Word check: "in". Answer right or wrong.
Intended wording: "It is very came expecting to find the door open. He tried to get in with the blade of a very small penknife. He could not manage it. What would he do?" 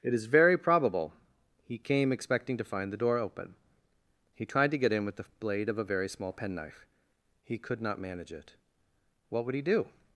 right